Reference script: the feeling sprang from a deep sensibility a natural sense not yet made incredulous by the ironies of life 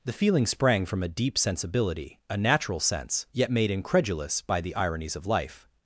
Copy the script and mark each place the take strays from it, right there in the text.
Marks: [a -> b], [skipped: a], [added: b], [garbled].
the feeling sprang from a deep sensibility a natural sense [skipped: not] yet made incredulous by the ironies of life